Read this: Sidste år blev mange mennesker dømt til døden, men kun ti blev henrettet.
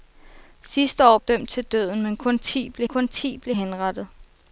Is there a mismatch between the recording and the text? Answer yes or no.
yes